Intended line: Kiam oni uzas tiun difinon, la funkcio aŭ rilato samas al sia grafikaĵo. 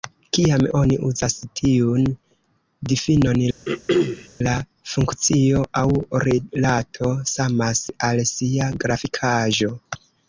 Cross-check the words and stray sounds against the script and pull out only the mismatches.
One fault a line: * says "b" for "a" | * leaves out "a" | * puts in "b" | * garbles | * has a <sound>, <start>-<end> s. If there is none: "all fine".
* has a throat clearing, 3.7-4.3 s